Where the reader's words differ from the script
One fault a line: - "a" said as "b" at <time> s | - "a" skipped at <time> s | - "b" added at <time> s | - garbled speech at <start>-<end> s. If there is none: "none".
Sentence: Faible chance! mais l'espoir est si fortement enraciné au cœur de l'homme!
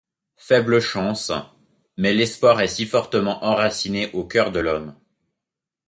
none